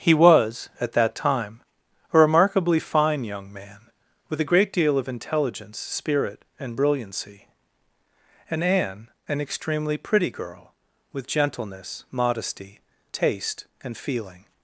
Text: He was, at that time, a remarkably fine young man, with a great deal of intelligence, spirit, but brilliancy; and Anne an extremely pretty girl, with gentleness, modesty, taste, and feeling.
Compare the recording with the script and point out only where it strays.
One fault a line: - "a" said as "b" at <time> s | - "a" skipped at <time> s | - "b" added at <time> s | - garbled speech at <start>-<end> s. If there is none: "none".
- "but" said as "and" at 6.6 s